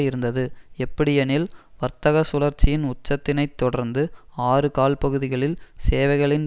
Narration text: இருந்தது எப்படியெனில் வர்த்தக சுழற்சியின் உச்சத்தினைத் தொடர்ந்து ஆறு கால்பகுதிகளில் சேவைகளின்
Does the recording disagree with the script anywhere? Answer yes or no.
no